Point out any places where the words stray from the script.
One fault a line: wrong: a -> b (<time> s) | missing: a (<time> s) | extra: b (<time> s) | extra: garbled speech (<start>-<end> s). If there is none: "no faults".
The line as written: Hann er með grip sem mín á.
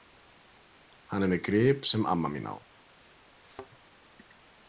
extra: amma (2.1 s)